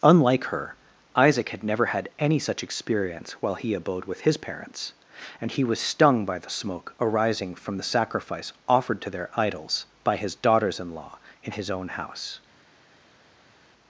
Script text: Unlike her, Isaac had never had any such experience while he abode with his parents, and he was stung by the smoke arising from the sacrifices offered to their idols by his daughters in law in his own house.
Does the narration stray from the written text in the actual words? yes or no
yes